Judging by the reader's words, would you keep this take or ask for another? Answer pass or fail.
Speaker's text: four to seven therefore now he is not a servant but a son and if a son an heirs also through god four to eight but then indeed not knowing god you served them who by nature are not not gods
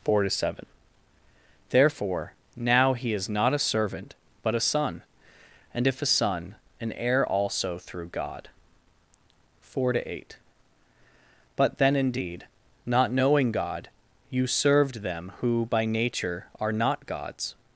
fail